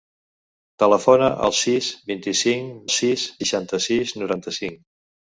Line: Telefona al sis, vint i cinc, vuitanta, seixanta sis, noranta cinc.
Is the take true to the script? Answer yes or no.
no